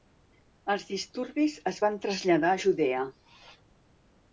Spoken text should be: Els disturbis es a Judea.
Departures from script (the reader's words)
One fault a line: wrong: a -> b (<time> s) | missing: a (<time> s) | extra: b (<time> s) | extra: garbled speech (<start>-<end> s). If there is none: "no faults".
extra: van traslladar (1.9 s)